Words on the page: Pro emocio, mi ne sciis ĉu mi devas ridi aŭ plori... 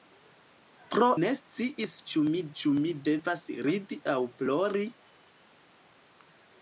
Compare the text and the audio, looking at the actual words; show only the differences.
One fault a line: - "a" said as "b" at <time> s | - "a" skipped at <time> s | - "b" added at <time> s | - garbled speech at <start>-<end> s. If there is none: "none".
- "emocio mi ne sciis" said as "ne sciis ĉu mi" at 1.2 s